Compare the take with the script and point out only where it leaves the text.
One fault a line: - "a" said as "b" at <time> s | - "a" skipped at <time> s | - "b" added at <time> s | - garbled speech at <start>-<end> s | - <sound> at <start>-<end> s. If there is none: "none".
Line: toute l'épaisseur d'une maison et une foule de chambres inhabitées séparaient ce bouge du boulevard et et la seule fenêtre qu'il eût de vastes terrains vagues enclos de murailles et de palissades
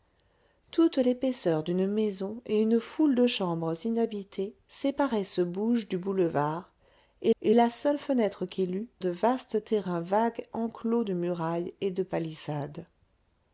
none